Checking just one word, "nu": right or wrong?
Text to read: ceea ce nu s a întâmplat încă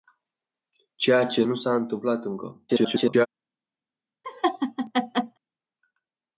right